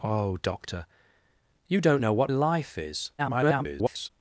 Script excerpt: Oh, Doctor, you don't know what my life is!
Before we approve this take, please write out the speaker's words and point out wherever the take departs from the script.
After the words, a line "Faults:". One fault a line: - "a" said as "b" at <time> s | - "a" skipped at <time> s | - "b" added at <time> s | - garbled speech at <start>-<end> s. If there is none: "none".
Oh, Doctor, you don't know what life is! [garbled]
Faults:
- "my" skipped at 2.3 s
- garbled speech at 3.2-4.1 s